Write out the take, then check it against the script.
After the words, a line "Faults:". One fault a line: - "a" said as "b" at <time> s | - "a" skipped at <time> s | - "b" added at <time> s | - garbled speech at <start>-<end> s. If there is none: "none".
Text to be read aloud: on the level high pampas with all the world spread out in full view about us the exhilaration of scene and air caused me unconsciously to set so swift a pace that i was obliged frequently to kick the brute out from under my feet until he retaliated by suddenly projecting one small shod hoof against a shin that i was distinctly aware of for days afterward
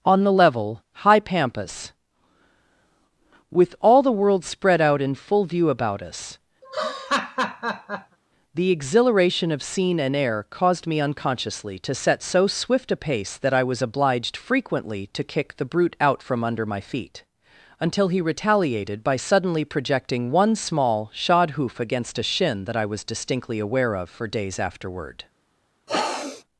on the level high pampas with all the world spread out in full view about us the exhilaration of scene and air caused me unconsciously to set so swift a pace that i was obliged frequently to kick the brute out from under my feet until he retaliated by suddenly projecting one small shod hoof against a shin that i was distinctly aware of for days afterward
Faults:
none